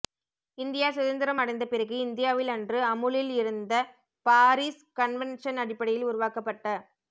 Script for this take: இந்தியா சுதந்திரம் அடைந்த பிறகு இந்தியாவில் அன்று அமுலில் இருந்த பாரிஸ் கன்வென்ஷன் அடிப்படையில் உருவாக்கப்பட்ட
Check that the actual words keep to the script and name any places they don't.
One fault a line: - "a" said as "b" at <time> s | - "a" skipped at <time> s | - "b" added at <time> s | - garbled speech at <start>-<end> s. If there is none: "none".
none